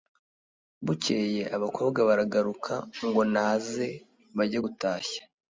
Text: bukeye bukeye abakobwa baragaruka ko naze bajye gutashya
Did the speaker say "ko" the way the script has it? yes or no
no